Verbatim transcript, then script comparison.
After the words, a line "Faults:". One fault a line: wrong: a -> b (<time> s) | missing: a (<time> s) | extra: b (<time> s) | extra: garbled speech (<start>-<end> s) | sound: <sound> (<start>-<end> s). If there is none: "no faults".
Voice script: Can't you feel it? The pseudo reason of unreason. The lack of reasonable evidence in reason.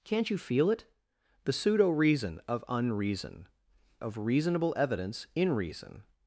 Can't you feel it? The pseudo reason of unreason. Of reasonable evidence in reason.
Faults:
missing: The lack (3.5 s)